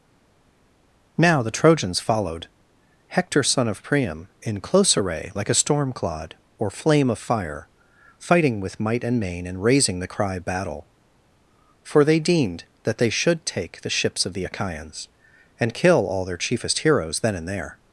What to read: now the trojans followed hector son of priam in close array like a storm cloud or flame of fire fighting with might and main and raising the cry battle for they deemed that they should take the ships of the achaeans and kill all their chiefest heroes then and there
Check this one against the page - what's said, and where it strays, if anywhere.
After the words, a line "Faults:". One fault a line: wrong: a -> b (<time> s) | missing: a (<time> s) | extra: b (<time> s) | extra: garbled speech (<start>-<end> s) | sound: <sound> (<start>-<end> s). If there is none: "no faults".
now the trojans followed hector son of priam in close array like a storm clod or flame of fire fighting with might and main and raising the cry battle for they deemed that they should take the ships of the achaeans and kill all their chiefest heroes then and there
Faults:
wrong: cloud -> clod (5.9 s)